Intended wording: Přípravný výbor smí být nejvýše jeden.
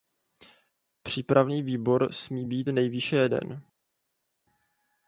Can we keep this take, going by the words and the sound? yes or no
yes